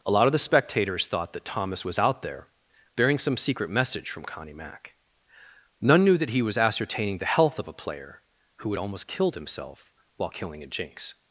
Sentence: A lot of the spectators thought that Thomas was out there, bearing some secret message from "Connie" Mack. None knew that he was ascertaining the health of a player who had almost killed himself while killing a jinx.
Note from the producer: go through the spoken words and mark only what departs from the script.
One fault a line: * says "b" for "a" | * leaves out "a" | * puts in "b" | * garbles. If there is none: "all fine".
all fine